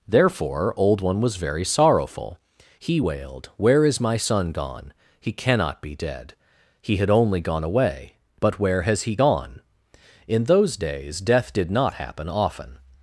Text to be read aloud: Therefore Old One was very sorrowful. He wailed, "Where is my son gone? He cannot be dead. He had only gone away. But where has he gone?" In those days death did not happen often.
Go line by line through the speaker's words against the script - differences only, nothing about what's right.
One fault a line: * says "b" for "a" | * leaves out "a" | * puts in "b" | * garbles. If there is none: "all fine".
all fine